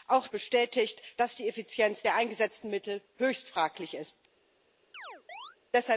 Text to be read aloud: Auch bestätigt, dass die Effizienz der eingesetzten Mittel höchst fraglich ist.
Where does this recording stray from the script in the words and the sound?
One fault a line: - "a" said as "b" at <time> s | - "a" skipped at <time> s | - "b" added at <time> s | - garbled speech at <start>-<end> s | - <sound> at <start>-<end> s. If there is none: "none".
- chirp at 4.9-5.6 s